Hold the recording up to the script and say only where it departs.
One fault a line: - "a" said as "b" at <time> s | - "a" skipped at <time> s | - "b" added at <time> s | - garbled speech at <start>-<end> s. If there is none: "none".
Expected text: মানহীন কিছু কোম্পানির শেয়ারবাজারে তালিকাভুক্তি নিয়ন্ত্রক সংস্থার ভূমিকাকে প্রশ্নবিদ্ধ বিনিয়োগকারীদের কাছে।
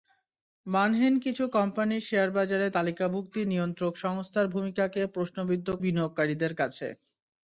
none